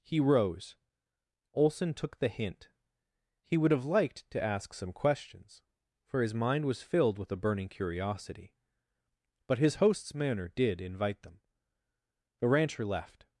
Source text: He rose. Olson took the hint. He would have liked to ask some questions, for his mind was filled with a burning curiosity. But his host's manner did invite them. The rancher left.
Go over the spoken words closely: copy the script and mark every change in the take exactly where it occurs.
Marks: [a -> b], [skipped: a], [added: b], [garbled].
He rose. Olson took the hint. He would have liked to ask some questions, for his mind was filled with a burning curiosity. But his host's manner did invite them. The rancher left.